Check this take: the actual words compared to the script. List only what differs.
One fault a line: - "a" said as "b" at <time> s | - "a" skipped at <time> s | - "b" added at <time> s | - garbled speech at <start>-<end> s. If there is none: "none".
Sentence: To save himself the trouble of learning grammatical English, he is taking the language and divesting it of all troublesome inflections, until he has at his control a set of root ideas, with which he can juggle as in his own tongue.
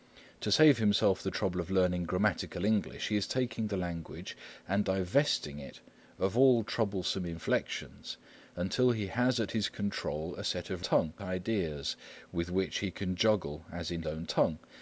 - "root" said as "tongue" at 10.8 s
- "his" skipped at 14.0 s